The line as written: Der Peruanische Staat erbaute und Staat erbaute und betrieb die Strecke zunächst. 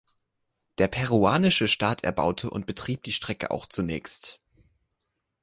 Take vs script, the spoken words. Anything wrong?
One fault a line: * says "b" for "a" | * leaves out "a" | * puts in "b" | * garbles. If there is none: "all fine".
* leaves out "Staat erbaute und"
* puts in "auch"